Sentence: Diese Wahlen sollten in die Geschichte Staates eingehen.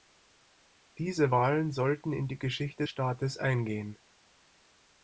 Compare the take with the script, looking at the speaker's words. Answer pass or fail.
pass